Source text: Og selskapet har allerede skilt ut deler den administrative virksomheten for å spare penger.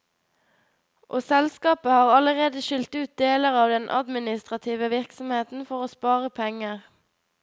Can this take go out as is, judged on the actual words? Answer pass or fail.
fail